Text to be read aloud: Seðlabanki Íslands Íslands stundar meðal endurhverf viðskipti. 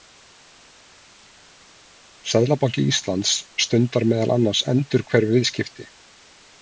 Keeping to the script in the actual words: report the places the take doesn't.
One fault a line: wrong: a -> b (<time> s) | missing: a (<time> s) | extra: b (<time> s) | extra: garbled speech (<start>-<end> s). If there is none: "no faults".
missing: Íslands (3.4 s)
extra: annars (4.4 s)